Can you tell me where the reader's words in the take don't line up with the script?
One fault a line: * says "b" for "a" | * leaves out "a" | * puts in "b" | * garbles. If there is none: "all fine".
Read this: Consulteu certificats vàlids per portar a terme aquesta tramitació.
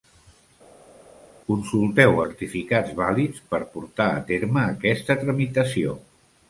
all fine